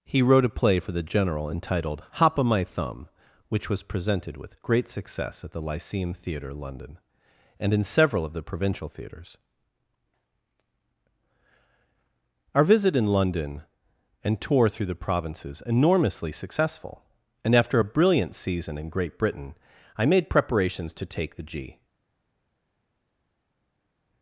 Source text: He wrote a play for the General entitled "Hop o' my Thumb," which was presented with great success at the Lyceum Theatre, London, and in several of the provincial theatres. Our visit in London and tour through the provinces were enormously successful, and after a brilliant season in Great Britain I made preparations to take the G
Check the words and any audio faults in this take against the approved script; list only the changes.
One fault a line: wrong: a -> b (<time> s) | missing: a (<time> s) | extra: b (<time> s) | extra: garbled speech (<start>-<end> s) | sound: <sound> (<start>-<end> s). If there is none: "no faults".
missing: were (15.6 s)